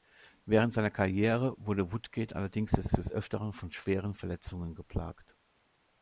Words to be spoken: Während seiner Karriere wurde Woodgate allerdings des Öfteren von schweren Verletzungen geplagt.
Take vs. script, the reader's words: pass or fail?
fail